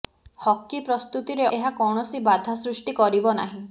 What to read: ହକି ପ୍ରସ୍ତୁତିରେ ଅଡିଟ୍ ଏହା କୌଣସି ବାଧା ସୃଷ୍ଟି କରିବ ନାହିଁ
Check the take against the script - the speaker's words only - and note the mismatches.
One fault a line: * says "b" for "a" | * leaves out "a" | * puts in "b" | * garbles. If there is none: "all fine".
* leaves out "ଅଡିଟ୍"